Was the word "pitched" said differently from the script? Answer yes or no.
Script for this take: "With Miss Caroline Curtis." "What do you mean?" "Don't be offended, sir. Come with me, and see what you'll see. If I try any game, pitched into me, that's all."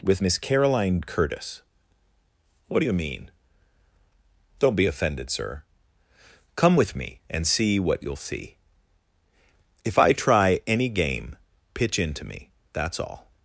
yes